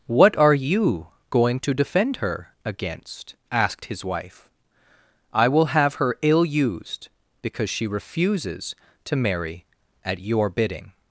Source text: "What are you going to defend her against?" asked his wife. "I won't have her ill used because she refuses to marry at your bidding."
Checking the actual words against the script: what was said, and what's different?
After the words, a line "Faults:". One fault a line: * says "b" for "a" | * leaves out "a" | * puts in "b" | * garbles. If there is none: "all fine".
"What are you going to defend her against?" asked his wife. "I will have her ill used because she refuses to marry at your bidding."
Faults:
* says "will" for "won't"